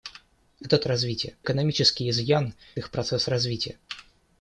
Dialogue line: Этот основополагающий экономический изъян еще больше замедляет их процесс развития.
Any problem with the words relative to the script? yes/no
yes